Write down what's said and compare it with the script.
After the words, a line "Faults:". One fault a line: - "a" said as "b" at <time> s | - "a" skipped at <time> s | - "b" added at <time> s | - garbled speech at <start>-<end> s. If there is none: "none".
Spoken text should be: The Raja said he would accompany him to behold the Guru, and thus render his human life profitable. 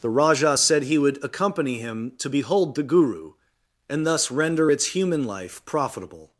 The Raja said he would accompany him to behold the Guru, and thus render its human life profitable.
Faults:
- "his" said as "its" at 4.7 s